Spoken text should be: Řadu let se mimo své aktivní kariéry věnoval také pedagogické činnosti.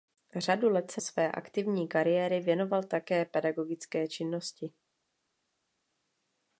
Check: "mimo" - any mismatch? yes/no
yes